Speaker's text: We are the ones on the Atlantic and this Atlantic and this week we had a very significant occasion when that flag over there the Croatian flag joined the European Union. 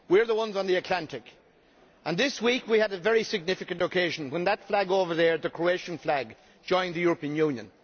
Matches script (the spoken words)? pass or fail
fail